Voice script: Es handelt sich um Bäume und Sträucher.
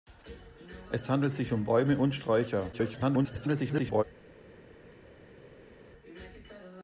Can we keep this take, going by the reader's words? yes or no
no